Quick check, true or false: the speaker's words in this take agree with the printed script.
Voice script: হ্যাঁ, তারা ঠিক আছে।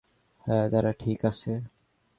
true